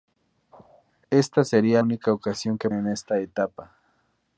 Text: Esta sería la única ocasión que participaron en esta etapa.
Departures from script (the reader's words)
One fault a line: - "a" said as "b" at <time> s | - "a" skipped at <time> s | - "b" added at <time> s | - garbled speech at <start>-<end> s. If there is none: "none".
- "la" skipped at 1.8 s
- "participaron" skipped at 2.7 s